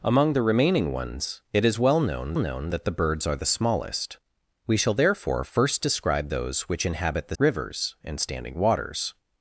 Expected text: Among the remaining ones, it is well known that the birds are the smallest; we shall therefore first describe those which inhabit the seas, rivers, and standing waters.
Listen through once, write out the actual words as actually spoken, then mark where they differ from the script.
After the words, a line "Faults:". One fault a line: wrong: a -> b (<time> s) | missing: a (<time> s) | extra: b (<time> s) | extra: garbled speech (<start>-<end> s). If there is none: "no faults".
Among the remaining ones, it is well known known that the birds are the smallest; we shall therefore first describe those which inhabit the rivers, and standing waters.
Faults:
extra: known (2.4 s)
missing: seas (7.4 s)